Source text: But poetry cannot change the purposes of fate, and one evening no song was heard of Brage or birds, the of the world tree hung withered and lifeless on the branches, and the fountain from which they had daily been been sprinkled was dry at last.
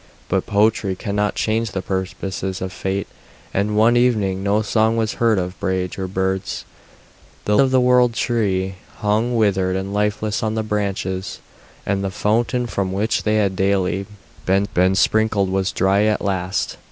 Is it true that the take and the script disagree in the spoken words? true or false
false